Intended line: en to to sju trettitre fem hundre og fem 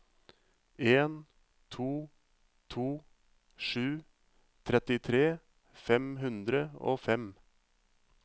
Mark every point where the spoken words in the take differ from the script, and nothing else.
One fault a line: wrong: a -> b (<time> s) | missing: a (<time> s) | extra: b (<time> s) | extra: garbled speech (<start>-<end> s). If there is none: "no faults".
no faults